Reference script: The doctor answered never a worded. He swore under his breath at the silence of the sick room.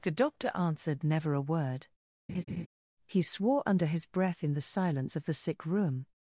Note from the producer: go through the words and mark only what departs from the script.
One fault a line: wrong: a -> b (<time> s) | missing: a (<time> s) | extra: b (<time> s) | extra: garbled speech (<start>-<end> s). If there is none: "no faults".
wrong: worded -> word (1.4 s)
wrong: at -> in (4.4 s)